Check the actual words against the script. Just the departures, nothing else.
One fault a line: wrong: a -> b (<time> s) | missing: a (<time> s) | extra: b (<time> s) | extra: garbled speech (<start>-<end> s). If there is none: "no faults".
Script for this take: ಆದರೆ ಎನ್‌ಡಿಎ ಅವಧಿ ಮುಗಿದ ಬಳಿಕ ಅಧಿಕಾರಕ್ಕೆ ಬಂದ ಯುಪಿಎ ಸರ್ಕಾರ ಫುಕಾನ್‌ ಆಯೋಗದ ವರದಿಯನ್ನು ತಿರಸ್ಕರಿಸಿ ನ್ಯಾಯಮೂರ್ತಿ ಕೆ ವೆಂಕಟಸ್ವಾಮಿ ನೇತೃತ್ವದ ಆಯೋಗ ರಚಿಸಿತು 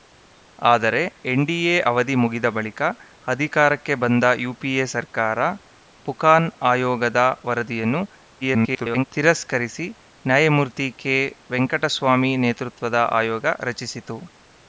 extra: garbled speech (8.4-9.1 s)